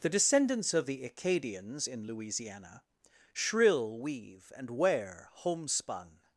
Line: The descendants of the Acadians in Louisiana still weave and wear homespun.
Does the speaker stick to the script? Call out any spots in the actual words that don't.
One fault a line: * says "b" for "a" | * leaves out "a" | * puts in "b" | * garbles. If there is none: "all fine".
* says "shrill" for "still"